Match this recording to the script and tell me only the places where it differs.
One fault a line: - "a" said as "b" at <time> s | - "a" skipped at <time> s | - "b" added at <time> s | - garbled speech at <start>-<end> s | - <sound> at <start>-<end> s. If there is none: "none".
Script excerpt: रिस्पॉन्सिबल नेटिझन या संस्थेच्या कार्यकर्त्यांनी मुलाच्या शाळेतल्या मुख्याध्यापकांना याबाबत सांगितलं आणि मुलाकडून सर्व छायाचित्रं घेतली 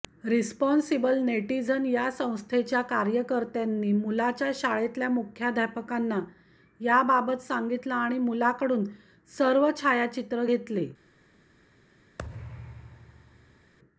- thud at 12.2-13.7 s